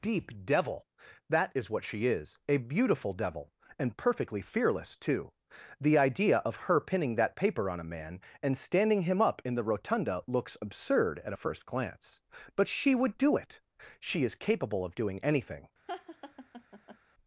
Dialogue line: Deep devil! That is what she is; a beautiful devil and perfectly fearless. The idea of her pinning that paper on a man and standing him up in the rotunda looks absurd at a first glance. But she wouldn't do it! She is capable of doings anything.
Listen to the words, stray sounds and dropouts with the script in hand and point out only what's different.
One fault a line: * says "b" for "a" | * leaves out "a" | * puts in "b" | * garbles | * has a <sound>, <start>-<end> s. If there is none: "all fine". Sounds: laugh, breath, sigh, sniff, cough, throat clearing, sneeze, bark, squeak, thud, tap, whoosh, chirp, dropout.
* puts in "too"
* says "would" for "wouldn't"
* says "doing" for "doings"
* has a laugh, 15.9-17.0 s